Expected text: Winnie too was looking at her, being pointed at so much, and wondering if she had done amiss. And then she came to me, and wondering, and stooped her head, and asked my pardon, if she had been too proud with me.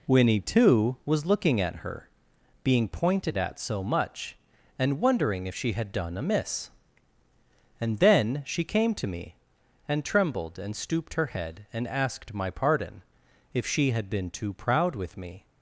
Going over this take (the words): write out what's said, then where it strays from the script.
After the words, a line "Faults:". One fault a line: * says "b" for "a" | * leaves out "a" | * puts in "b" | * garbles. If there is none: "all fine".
Winnie too was looking at her, being pointed at so much, and wondering if she had done amiss. And then she came to me, and trembled, and stooped her head, and asked my pardon, if she had been too proud with me.
Faults:
* says "trembled" for "wondering"